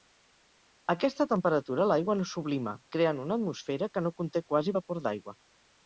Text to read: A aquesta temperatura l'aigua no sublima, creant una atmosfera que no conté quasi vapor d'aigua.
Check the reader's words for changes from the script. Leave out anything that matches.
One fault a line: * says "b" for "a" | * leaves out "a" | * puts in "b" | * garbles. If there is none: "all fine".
all fine